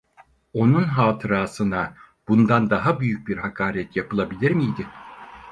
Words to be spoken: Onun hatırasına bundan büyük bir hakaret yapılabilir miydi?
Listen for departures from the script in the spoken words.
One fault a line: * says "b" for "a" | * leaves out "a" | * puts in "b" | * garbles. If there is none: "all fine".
* puts in "daha"